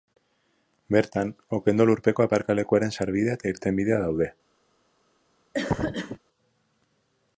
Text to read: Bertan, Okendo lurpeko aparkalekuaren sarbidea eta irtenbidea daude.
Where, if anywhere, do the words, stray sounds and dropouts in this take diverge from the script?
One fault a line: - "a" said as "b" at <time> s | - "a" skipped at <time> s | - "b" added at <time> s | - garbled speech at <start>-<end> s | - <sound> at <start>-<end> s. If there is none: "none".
- cough at 5.5-6.2 s